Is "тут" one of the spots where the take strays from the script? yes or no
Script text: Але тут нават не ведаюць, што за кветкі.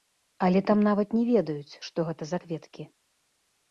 yes